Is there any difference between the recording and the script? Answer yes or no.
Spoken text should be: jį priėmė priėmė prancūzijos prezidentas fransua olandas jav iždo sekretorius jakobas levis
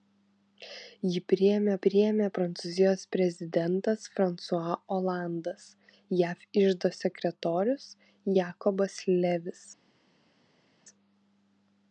no